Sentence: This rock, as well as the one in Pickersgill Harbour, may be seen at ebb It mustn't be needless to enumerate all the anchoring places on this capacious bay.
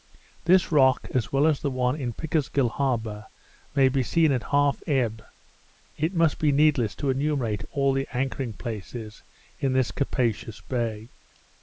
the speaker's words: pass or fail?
fail